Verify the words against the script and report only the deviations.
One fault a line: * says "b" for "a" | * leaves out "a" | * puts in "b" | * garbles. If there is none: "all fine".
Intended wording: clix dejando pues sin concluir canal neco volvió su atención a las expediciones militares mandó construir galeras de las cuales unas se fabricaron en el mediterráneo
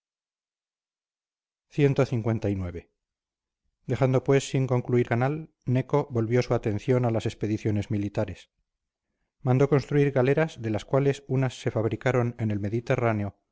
all fine